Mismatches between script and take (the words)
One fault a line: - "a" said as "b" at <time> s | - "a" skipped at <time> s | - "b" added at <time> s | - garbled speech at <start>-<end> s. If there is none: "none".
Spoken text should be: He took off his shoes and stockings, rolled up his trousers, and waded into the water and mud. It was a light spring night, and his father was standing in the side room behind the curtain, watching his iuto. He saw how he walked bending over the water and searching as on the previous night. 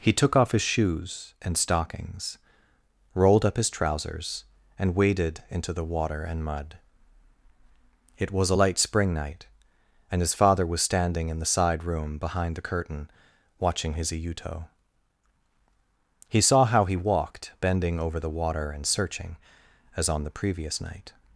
none